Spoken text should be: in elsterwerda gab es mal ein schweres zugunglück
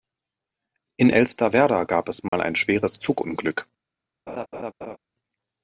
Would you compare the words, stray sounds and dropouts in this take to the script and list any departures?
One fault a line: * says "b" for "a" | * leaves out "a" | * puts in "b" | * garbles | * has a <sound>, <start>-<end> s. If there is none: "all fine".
* has a dropout, 2.3-2.3 s
* has a laugh, 4.3-5.0 s